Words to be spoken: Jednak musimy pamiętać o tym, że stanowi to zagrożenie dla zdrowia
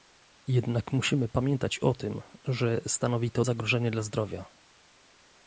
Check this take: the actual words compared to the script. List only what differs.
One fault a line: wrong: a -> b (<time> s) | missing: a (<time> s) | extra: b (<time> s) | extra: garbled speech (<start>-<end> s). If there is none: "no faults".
no faults